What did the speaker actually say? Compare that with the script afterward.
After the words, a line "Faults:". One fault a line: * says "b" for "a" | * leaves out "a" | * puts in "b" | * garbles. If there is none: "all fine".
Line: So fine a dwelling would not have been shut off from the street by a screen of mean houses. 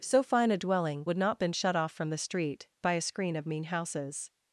So fine a dwelling would not been shut off from the street by a screen of mean houses.
Faults:
* leaves out "have"